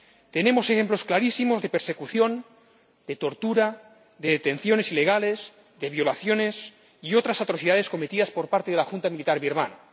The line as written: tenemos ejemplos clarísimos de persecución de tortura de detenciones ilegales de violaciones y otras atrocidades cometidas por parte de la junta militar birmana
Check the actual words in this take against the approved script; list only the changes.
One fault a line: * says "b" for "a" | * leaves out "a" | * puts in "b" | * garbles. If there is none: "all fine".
all fine